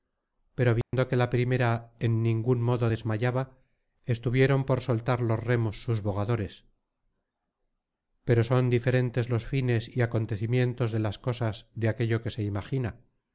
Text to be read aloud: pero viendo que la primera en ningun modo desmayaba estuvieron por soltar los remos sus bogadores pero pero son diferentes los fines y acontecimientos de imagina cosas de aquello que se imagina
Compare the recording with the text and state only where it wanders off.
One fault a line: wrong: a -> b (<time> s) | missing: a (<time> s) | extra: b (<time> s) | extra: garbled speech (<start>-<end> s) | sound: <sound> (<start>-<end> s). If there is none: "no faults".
sound: dropout (0.8-0.9 s)
missing: pero (8.4 s)
wrong: imagina -> las (11.0 s)